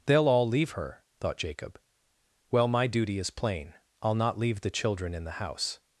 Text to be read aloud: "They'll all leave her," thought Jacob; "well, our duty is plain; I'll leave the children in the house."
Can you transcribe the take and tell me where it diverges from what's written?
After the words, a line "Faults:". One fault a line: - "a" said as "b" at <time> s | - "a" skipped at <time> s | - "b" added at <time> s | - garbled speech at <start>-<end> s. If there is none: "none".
"They'll all leave her," thought Jacob; "well, my duty is plain; I'll not leave the children in the house."
Faults:
- "our" said as "my" at 2.7 s
- "not" added at 4.2 s